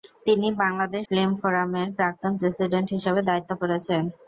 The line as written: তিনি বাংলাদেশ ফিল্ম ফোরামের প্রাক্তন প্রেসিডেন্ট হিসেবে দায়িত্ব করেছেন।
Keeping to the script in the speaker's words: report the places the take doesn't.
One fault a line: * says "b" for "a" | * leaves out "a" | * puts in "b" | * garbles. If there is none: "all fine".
all fine